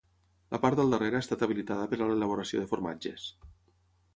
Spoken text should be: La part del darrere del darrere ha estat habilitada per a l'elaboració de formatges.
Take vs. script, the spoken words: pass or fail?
fail